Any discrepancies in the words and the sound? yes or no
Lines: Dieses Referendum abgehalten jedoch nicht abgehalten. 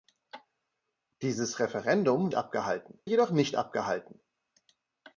no